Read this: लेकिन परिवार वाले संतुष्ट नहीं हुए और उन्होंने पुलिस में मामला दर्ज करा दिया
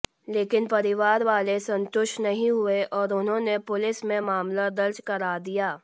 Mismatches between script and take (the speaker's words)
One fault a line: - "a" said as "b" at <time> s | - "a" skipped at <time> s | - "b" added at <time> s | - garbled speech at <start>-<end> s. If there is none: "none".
none